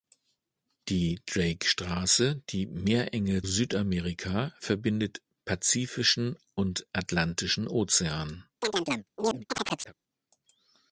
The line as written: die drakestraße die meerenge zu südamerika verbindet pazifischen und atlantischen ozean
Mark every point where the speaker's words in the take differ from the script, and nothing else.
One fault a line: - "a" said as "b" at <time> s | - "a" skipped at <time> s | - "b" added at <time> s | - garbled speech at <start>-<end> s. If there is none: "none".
- "zu" skipped at 3.4 s